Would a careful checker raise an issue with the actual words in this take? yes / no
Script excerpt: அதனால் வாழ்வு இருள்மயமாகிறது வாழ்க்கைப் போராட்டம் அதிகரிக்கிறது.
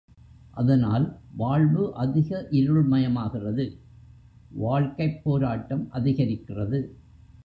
yes